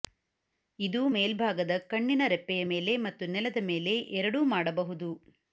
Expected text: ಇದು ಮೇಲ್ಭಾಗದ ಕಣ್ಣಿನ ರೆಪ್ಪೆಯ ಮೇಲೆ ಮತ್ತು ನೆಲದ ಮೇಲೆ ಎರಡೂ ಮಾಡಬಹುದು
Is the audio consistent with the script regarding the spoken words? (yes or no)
yes